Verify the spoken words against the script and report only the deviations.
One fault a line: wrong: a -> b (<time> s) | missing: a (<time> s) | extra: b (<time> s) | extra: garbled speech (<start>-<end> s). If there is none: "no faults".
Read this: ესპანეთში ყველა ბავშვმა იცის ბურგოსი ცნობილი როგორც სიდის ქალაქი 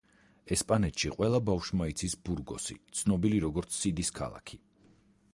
no faults